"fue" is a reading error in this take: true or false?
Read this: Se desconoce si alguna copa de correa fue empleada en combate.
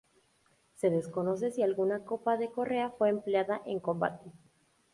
false